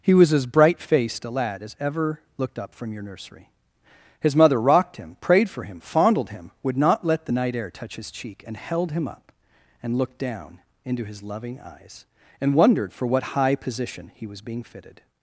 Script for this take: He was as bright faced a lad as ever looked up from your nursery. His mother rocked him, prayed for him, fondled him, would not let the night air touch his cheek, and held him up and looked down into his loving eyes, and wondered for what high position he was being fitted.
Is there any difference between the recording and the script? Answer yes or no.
no